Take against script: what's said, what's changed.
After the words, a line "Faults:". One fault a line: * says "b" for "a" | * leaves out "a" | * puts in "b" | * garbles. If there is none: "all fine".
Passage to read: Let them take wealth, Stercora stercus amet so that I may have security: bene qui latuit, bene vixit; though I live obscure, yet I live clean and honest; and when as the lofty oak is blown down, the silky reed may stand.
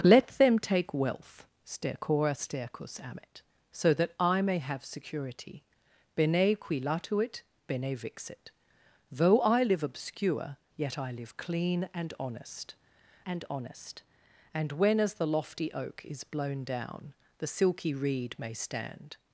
Let them take wealth, Stercora stercus amet so that I may have security: bene qui latuit, bene vixit; though I live obscure, yet I live clean and honest and honest; and when as the lofty oak is blown down, the silky reed may stand.
Faults:
* puts in "honest and"